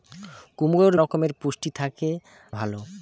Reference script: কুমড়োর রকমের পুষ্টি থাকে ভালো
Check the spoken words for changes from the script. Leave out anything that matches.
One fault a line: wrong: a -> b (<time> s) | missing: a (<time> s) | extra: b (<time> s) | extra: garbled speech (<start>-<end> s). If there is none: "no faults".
no faults